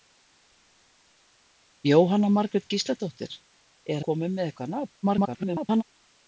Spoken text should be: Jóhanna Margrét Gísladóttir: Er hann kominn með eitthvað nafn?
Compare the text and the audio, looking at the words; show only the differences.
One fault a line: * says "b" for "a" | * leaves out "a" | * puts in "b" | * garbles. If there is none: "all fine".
* leaves out "hann"
* garbles